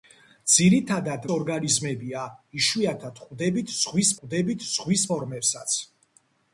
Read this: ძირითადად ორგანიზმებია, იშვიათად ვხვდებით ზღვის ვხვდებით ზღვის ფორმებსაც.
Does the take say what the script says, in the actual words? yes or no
yes